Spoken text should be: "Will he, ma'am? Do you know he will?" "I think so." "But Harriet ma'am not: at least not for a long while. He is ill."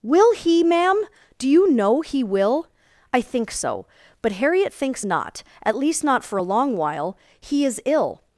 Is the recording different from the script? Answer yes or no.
yes